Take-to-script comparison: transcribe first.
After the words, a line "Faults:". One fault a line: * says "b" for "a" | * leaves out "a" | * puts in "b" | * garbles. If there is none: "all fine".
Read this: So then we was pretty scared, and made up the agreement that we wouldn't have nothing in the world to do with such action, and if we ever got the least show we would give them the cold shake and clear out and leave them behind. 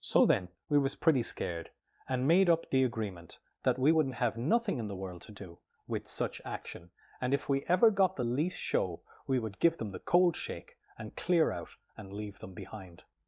So then we was pretty scared, and made up the agreement that we wouldn't have nothing in the world to do with such action, and if we ever got the least show we would give them the cold shake and clear out and leave them behind.
Faults:
all fine